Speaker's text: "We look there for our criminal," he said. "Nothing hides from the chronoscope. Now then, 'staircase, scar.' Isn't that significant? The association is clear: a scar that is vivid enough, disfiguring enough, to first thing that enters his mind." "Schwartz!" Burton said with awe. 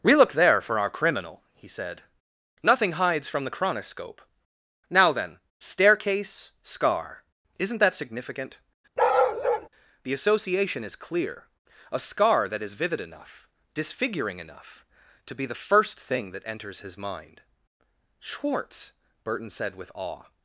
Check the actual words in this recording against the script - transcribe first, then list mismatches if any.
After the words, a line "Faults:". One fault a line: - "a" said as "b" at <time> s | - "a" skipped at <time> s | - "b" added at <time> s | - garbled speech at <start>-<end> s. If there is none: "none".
"We look there for our criminal," he said. "Nothing hides from the chronoscope. Now then, 'staircase, scar.' Isn't that significant? The association is clear: a scar that is vivid enough, disfiguring enough, to be the first thing that enters his mind." "Schwartz!" Burton said with awe.
Faults:
- "be the" added at 15.3 s